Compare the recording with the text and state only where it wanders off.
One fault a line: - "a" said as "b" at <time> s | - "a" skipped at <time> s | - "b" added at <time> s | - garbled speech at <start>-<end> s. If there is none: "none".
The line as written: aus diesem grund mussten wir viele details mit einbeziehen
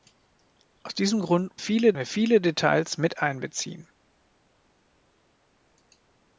- "mussten" said as "viele" at 1.6 s